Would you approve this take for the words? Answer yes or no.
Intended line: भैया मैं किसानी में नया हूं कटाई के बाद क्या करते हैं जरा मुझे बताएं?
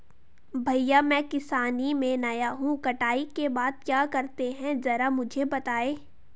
yes